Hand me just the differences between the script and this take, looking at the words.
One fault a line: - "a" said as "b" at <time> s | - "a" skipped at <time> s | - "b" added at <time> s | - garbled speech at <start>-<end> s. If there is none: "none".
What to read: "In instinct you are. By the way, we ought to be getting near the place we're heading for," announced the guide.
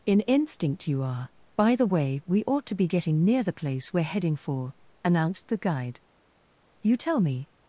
- "You tell me" added at 6.8 s